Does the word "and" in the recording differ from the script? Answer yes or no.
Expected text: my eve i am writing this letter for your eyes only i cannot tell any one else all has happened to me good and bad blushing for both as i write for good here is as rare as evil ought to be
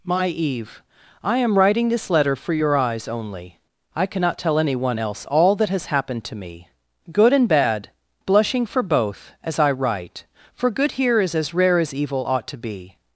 no